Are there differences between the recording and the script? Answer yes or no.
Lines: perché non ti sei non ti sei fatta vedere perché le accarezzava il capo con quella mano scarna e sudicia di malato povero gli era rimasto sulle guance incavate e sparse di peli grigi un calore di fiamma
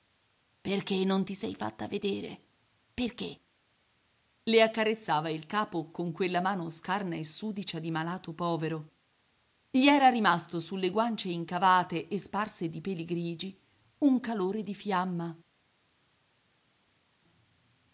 yes